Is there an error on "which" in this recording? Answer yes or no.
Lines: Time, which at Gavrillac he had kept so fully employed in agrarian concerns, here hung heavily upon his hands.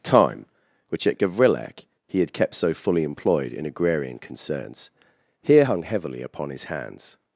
no